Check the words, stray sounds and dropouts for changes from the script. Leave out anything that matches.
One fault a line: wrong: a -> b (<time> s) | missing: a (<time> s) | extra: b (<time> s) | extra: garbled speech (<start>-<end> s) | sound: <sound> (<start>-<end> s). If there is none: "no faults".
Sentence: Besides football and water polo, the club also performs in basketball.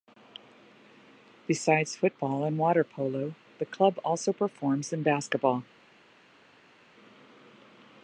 no faults